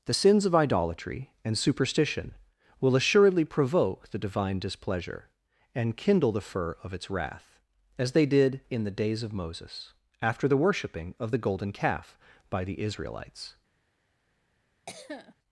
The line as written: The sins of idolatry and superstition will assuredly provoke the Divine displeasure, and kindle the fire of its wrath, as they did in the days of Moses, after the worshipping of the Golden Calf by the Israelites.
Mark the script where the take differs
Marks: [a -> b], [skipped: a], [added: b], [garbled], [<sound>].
The sins of idolatry and superstition will assuredly provoke the Divine displeasure, and kindle the [fire -> fur] of its wrath, as they did in the days of Moses, after the worshipping of the Golden Calf by the Israelites. [cough]